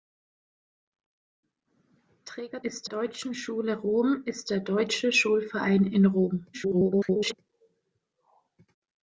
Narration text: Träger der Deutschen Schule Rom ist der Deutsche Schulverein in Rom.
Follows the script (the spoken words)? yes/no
no